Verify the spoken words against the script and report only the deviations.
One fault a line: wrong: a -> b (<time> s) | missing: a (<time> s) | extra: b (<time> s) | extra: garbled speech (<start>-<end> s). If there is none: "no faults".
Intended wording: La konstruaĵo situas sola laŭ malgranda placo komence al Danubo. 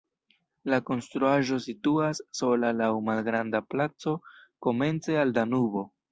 no faults